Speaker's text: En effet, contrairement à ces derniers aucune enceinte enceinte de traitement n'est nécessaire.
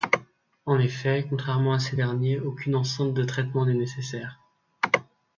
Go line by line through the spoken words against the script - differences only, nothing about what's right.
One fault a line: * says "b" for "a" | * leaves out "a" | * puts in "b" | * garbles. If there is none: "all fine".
* leaves out "enceinte"